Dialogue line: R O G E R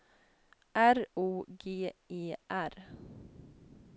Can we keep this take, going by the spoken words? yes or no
yes